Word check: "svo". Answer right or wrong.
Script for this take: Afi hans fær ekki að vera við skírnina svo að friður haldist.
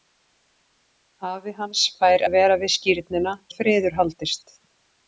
wrong